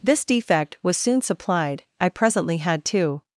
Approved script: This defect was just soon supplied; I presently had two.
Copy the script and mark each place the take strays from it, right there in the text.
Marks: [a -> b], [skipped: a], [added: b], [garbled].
This defect was [skipped: just] soon supplied; I presently had two.